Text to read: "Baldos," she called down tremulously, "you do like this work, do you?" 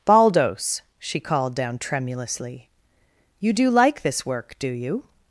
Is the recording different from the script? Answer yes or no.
no